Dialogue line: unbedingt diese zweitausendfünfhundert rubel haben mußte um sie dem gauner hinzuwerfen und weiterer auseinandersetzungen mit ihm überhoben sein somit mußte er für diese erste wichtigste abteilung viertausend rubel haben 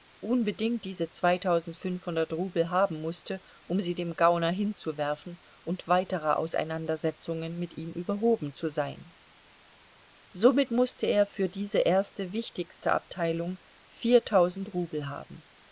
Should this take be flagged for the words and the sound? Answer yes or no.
yes